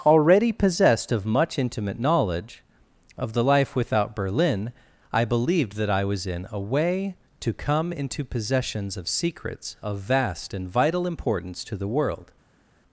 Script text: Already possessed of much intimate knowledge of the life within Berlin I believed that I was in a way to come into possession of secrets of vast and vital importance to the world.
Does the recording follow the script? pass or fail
fail